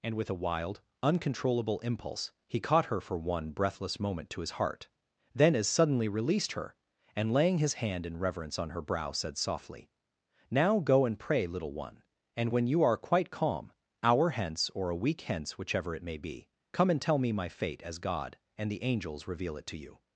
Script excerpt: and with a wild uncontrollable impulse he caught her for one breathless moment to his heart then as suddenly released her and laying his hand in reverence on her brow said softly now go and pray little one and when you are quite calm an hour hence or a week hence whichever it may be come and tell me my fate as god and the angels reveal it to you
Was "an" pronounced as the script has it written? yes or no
no